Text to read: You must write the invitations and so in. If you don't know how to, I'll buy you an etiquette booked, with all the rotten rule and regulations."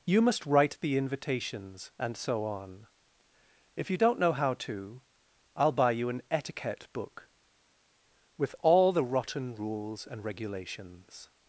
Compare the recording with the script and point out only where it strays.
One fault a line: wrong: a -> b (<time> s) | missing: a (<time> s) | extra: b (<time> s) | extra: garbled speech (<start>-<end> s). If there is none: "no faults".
wrong: in -> on (2.4 s)
wrong: booked -> book (6.9 s)
wrong: rule -> rules (9.5 s)